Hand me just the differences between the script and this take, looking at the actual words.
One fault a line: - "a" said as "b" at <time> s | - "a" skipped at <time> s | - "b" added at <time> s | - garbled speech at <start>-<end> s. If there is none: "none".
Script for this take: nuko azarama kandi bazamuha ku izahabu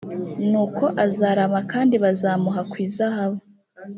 none